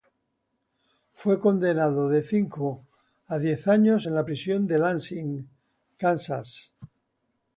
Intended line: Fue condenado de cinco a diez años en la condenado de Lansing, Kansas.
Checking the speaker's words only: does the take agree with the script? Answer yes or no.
no